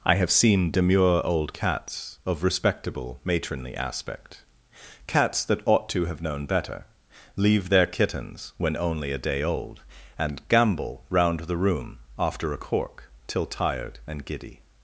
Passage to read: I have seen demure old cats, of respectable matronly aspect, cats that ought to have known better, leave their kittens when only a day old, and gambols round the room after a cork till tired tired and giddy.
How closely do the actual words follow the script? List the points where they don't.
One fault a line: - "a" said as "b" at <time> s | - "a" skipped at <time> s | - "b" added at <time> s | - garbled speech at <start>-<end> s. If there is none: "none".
- "gambols" said as "gambol" at 10.5 s
- "tired" skipped at 14.0 s